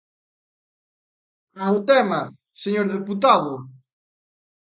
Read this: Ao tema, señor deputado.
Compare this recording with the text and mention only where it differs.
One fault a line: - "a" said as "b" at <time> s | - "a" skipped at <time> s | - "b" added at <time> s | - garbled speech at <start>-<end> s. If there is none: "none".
none